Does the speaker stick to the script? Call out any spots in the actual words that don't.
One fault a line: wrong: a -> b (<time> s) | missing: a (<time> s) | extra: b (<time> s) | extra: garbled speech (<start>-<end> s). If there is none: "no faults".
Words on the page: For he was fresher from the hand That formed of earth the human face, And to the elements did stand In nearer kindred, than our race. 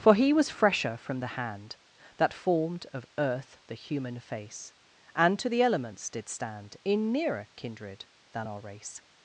no faults